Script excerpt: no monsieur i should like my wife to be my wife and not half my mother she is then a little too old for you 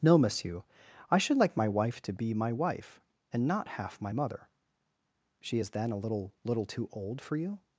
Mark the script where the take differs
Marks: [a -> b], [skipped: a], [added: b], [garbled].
no monsieur i should like my wife to be my wife and not half my mother she is then a little [added: little] too old for you